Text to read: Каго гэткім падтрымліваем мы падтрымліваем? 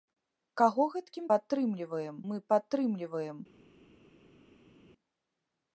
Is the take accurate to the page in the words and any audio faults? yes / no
yes